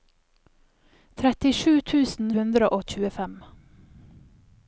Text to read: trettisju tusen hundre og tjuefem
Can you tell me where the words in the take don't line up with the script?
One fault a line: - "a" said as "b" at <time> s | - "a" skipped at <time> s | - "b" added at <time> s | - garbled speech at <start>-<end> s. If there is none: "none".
none